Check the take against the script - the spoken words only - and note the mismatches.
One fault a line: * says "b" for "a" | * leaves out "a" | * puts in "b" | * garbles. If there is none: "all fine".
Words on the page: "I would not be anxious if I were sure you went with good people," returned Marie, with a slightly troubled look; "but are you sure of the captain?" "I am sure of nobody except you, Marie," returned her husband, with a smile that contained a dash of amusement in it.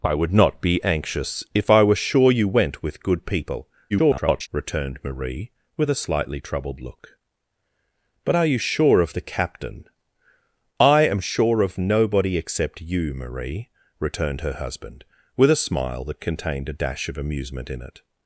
* garbles